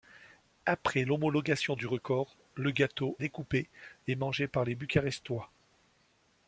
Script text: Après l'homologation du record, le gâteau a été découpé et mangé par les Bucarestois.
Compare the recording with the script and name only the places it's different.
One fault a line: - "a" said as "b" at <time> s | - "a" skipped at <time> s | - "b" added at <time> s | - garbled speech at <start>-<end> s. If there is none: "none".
- "a été" skipped at 3.2 s